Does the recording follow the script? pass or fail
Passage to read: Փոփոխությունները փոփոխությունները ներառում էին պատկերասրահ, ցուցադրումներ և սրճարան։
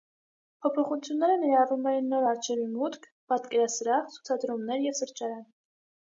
fail